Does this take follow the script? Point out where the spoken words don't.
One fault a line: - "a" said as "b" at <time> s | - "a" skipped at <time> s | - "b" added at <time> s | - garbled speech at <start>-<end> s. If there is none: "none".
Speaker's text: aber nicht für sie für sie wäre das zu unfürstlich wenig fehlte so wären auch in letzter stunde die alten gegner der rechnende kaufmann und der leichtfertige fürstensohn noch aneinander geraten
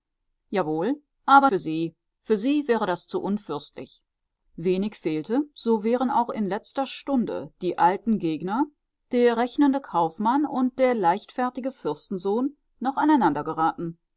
- "nicht" skipped at 1.5 s